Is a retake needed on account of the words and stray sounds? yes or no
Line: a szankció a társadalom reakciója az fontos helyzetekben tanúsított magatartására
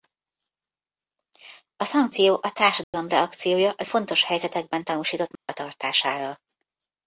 yes